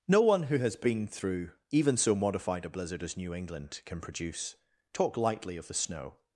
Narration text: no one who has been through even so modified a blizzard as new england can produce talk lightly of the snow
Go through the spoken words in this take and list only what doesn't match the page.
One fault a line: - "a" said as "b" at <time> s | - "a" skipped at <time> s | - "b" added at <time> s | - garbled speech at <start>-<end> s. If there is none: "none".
none